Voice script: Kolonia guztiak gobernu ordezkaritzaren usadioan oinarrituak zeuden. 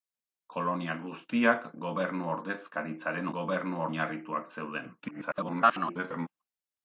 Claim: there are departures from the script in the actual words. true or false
true